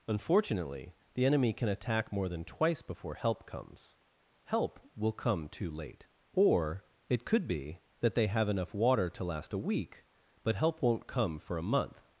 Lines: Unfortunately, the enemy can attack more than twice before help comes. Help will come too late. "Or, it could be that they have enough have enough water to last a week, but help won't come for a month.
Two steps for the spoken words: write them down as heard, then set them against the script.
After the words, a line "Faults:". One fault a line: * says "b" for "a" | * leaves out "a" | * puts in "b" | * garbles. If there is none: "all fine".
Unfortunately, the enemy can attack more than twice before help comes. Help will come too late. "Or, it could be that they have enough water to last a week, but help won't come for a month.
Faults:
* leaves out "have enough"